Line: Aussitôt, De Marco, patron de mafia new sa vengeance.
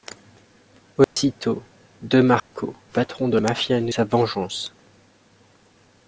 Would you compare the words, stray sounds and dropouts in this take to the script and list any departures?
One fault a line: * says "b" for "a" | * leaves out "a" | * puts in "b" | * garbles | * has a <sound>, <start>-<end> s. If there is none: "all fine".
* has a dropout, 1.0-1.2 s
* has a dropout, 2.4-2.5 s